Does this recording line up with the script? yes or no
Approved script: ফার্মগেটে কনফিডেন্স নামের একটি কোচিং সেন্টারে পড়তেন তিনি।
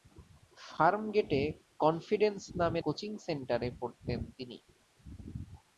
no